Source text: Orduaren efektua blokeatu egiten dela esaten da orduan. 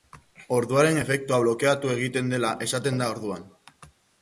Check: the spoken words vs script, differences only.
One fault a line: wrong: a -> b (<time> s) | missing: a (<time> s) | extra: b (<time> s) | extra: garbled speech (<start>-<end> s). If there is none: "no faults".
no faults